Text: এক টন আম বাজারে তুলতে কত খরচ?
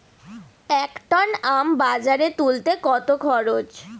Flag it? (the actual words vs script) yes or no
no